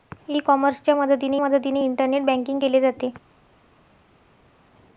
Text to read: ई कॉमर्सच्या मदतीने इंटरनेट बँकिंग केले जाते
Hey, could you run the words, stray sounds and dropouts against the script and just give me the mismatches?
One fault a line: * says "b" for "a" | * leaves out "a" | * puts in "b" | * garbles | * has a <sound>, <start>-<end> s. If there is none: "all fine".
* puts in "मदतीने"